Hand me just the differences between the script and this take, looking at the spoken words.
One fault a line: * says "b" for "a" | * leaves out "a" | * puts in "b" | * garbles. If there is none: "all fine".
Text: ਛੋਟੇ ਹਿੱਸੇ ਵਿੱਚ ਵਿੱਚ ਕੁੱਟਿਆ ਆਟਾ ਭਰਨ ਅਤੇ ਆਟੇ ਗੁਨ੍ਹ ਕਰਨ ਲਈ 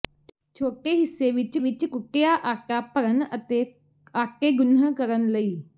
all fine